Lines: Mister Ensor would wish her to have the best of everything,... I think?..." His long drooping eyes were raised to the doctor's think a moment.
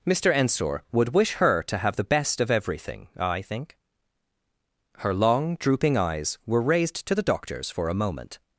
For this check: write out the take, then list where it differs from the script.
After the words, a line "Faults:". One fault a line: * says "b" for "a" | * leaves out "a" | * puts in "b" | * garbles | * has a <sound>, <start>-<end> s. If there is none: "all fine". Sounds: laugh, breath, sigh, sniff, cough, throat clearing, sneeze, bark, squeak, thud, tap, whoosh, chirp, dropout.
Mister Ensor would wish her to have the best of everything,... I think?..." Her long drooping eyes were raised to the doctor's for a moment.
Faults:
* says "Her" for "His"
* says "for" for "think"